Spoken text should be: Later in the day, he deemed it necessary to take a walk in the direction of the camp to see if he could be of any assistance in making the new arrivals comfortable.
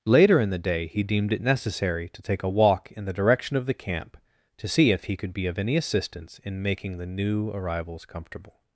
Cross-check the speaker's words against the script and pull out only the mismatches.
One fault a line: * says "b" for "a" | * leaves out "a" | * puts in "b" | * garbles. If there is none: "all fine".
all fine